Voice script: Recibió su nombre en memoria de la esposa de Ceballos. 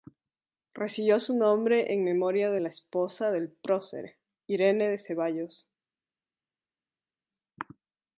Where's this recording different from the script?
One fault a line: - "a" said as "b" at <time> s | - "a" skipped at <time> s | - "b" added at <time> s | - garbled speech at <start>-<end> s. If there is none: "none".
- "del prócer Irene" added at 3.3 s